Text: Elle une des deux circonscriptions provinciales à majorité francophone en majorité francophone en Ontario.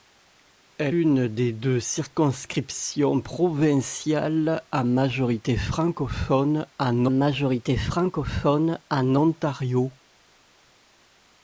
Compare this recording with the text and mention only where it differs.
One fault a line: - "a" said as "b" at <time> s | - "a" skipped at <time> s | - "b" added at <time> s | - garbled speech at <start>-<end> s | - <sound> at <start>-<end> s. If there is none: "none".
none